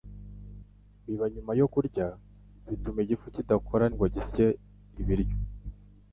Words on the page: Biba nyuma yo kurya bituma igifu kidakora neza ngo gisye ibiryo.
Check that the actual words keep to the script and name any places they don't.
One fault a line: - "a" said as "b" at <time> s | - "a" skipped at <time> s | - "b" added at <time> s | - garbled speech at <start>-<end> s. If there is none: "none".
- "neza" skipped at 3.9 s